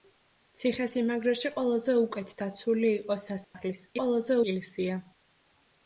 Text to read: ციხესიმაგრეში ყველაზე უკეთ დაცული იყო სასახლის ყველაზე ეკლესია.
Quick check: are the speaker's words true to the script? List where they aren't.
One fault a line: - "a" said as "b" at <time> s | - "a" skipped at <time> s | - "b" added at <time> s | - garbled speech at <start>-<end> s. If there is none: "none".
none